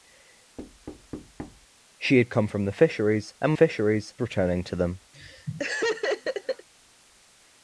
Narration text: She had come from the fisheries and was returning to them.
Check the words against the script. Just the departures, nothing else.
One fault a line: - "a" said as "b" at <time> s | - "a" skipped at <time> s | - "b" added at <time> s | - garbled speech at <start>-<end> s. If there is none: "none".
- "was" said as "fisheries" at 3.5 s